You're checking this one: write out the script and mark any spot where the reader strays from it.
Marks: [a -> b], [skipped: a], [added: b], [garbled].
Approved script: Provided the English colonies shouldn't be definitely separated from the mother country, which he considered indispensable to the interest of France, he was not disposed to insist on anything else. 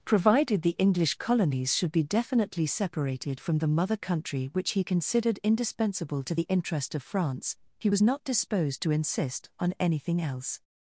Provided the English colonies [shouldn't -> should] be definitely separated from the mother country, which he considered indispensable to the interest of France, he was not disposed to insist on anything else.